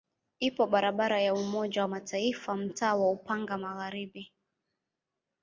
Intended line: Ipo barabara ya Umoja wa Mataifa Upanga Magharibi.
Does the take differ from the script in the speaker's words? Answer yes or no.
yes